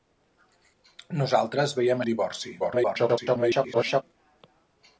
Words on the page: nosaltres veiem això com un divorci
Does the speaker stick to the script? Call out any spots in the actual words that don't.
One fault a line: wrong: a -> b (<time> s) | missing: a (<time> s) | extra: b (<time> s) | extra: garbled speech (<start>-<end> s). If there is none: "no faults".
missing: això com (2.0 s)
extra: garbled speech (2.6-4.0 s)